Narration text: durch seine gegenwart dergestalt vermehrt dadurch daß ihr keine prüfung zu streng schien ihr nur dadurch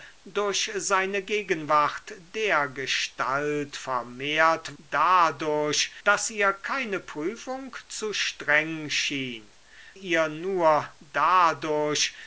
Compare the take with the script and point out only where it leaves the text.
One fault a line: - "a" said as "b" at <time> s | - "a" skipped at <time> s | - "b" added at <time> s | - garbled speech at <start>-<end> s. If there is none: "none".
none